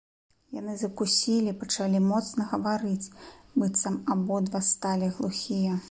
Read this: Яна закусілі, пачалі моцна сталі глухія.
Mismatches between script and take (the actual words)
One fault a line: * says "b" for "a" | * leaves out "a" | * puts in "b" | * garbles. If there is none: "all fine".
* says "Яны" for "Яна"
* puts in "гаварыць быццам абодва"